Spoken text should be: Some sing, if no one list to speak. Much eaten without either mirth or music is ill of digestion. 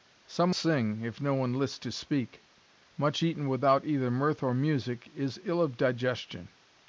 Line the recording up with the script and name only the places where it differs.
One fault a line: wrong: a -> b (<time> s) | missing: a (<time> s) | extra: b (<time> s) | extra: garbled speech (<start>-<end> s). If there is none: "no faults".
no faults